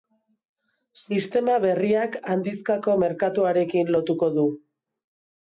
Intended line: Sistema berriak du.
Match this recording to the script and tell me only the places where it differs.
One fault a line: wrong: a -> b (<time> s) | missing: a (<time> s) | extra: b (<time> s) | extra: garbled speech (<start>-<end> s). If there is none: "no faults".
extra: handizkako merkatuarekin lotuko (2.3 s)